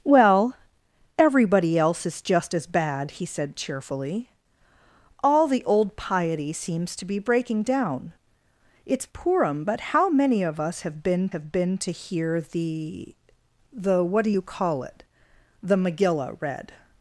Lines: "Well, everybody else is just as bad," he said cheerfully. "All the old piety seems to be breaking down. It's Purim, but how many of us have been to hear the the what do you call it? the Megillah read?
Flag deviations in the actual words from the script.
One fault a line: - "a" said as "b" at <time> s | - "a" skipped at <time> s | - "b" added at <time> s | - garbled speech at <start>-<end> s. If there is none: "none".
- "have been" added at 11.3 s